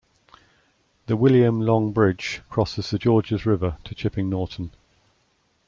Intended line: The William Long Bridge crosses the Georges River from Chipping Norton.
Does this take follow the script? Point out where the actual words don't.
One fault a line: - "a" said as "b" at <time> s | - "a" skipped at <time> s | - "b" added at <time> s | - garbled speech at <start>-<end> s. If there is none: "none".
- "from" said as "to" at 3.8 s